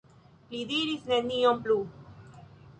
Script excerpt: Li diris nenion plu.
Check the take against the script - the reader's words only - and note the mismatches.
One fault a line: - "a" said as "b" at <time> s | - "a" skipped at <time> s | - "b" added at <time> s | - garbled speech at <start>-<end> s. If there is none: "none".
none